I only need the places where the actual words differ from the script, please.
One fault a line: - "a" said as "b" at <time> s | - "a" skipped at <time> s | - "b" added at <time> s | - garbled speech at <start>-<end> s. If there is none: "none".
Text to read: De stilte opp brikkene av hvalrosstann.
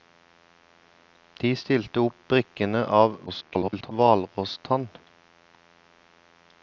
- garbled speech at 3.3-3.9 s